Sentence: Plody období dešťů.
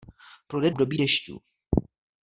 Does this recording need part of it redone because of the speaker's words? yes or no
no